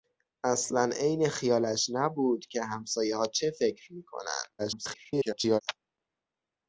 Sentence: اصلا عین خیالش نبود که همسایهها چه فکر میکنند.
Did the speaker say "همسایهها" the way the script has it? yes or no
yes